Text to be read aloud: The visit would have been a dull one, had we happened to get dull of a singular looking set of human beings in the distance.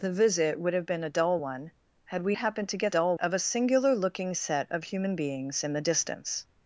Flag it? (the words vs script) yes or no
no